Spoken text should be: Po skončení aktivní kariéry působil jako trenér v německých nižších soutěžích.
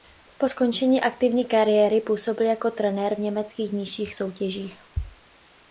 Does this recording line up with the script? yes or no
yes